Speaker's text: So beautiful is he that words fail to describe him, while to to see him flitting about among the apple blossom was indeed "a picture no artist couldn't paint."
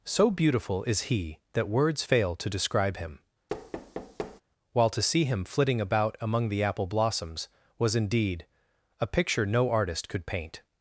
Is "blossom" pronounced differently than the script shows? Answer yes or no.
yes